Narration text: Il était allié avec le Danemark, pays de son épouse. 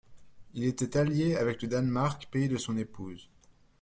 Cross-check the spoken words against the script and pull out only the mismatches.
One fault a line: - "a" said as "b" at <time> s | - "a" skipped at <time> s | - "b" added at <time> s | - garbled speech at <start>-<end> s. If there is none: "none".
none